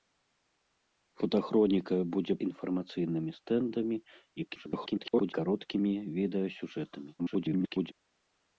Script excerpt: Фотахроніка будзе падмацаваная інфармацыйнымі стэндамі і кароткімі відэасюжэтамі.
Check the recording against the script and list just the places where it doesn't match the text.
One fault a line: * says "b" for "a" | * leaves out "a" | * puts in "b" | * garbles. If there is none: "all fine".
* leaves out "падмацаваная"
* garbles
* garbles